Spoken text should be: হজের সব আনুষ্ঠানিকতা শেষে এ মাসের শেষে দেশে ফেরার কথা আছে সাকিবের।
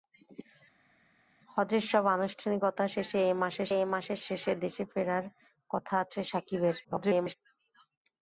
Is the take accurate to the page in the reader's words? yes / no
no